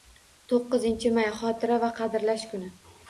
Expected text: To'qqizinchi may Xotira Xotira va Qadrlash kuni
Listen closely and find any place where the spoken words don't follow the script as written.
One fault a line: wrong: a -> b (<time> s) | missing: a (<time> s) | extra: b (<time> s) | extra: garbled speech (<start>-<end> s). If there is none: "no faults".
missing: Xotira (1.8 s)